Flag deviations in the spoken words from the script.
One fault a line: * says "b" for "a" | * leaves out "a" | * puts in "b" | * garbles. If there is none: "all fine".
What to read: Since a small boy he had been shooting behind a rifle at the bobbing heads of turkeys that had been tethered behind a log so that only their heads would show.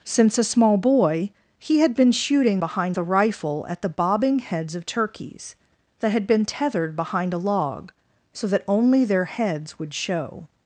all fine